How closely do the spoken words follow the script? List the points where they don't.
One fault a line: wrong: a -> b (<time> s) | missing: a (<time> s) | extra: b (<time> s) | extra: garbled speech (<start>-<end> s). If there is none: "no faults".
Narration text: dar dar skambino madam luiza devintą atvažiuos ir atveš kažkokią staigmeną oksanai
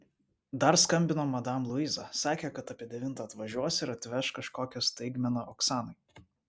missing: dar (0.8 s)
extra: sakė kad apie (2.2 s)